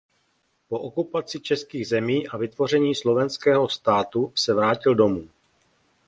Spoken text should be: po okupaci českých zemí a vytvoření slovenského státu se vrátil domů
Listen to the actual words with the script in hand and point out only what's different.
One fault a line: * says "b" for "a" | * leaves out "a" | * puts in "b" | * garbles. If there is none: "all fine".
all fine